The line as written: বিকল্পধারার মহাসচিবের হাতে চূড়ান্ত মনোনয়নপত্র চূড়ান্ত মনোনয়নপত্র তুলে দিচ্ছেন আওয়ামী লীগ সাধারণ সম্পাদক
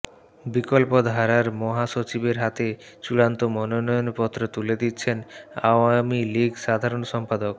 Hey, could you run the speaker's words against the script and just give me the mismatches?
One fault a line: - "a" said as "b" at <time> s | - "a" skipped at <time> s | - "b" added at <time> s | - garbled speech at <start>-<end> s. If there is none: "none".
- "চূড়ান্ত মনোনয়নপত্র" skipped at 4.4 s